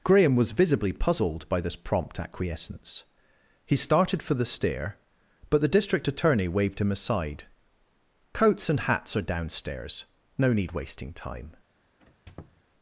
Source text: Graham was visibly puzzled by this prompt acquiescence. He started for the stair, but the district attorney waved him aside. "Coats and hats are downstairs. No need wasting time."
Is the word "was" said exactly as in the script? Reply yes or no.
yes